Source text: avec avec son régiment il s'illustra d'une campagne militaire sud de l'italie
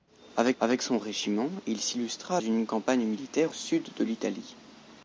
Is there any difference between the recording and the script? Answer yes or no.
no